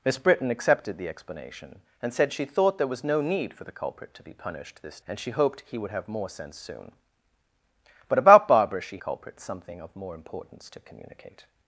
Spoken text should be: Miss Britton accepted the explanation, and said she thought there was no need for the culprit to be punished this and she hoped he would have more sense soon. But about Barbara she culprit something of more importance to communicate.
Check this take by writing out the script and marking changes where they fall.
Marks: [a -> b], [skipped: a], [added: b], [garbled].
Miss Britton accepted the explanation, and said she thought there was no need for the culprit to be punished this and she hoped he would have more sense soon. But about Barbara she culprit something of more importance to communicate.